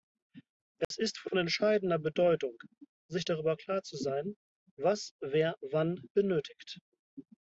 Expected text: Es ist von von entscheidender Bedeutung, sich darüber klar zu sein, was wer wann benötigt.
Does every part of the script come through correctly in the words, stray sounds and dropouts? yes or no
no